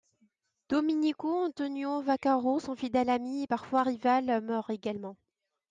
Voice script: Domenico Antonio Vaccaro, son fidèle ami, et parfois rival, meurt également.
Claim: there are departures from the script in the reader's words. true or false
false